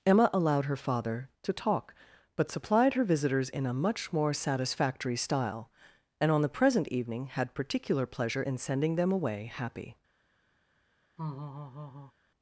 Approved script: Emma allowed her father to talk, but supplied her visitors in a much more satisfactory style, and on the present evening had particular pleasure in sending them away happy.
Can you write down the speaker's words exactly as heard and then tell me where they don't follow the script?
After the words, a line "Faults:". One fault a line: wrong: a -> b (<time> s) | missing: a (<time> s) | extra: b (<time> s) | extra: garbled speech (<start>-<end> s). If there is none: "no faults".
Emma allowed her father to talk, but supplied her visitors in a much more satisfactory style, and on the present evening had particular pleasure in sending them away happy.
Faults:
no faults